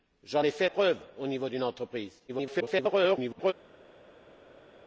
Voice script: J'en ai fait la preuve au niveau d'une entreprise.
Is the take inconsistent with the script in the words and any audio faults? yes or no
yes